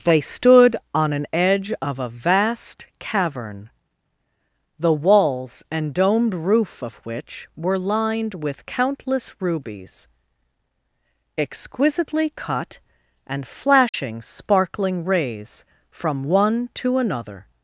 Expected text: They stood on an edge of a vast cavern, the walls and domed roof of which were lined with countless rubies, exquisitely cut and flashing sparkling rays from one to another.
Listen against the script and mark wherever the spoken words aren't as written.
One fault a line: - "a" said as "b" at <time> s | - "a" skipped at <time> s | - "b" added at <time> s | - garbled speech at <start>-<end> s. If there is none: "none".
none